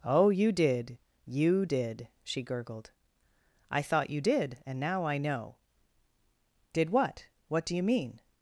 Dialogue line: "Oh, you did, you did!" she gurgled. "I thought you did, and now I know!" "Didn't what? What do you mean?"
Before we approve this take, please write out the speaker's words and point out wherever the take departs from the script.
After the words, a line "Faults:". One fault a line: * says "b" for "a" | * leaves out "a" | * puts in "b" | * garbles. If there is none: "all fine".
"Oh, you did, you did!" she gurgled. "I thought you did, and now I know!" "Did what? What do you mean?"
Faults:
* says "Did" for "Didn't"